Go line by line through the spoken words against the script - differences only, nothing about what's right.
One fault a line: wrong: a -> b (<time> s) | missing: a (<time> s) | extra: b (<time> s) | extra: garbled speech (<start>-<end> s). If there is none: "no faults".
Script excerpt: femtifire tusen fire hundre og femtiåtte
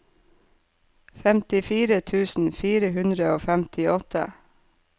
no faults